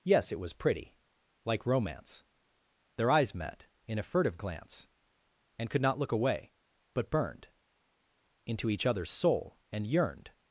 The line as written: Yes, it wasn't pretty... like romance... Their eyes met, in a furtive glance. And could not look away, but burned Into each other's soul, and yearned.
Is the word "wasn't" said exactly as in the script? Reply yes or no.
no